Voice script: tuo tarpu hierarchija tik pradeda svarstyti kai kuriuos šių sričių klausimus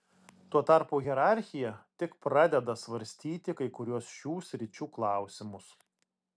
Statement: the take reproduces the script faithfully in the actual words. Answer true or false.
true